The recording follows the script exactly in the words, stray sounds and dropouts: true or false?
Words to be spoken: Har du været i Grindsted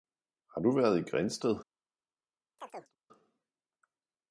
false